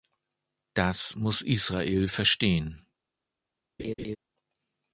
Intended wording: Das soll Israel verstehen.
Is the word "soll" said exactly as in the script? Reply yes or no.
no